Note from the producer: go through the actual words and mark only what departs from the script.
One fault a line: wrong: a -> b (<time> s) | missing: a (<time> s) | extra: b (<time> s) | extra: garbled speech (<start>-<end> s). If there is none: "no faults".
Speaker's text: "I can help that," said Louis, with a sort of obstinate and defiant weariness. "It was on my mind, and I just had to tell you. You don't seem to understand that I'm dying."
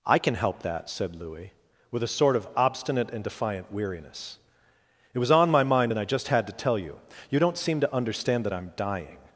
no faults